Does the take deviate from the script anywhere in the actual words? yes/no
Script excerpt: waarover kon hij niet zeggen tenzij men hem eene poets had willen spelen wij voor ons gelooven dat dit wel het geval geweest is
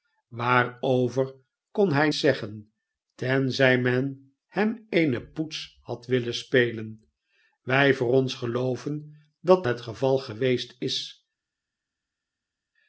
yes